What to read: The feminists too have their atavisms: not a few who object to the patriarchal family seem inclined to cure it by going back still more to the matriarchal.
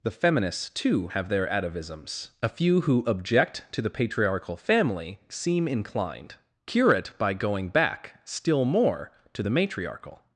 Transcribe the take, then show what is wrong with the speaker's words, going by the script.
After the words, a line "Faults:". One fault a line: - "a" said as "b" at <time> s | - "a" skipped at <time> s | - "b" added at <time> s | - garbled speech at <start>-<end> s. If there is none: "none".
The feminists too have their atavisms: a few who object to the patriarchal family seem inclined cure it by going back still more to the matriarchal.
Faults:
- "not" skipped at 2.3 s
- "to" skipped at 6.4 s